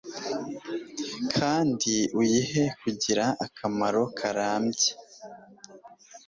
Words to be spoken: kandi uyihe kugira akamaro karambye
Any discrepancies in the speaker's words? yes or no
no